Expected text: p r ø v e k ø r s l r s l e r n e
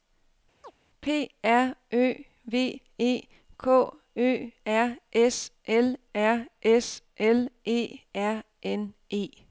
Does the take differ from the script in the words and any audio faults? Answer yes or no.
yes